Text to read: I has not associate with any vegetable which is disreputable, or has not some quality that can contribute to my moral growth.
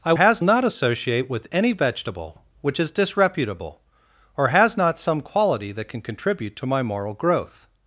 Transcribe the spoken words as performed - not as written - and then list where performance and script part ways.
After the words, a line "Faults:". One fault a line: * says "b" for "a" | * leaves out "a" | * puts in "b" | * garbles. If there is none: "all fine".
I has not associate with any vegetable which is disreputable, or has not some quality that can contribute to my moral growth.
Faults:
all fine